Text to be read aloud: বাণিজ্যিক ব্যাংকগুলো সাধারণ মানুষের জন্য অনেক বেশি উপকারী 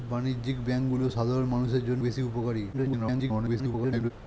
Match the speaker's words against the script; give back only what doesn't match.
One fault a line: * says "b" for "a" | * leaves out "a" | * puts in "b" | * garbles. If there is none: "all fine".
* leaves out "অনেক"
* garbles